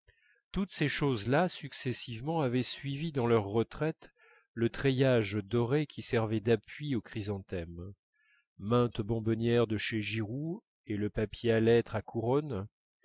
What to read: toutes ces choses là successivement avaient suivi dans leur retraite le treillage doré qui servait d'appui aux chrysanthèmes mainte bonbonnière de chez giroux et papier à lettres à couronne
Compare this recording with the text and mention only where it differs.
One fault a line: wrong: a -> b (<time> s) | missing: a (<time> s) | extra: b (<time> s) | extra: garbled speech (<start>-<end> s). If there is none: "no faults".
extra: le (11.0 s)